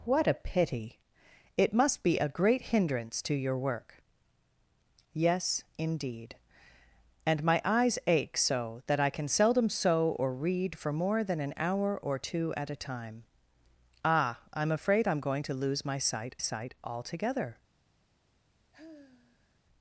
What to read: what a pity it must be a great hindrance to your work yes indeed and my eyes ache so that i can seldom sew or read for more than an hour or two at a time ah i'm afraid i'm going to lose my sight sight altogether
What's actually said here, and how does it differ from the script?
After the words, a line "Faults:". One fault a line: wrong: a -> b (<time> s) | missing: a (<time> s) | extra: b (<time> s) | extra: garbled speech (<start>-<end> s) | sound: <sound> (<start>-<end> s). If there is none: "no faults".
what a pity it must be a great hindrance to your work yes indeed and my eyes ache so that i can seldom sew or read for more than an hour or two at a time ah i'm afraid i'm going to lose my sight sight altogether
Faults:
sound: sigh (18.7-19.6 s)